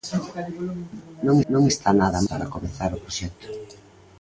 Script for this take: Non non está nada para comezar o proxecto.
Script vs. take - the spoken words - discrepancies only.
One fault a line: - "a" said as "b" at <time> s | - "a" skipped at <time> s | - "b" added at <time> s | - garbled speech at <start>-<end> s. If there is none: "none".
none